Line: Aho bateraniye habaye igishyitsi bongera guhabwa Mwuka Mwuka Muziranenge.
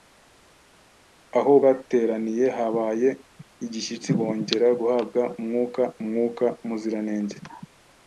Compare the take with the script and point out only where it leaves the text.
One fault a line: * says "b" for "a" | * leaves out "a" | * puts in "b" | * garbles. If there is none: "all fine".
all fine